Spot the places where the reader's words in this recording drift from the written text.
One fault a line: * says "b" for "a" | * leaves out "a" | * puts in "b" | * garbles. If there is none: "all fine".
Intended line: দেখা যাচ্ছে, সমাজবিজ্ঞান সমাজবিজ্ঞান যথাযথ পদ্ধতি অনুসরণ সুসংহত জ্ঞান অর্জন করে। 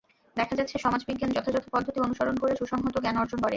* leaves out "সমাজবিজ্ঞান"
* puts in "করে"